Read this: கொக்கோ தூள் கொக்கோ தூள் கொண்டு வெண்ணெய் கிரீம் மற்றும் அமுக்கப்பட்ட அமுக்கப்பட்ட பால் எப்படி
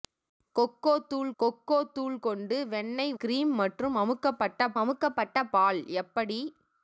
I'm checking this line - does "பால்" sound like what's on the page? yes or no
yes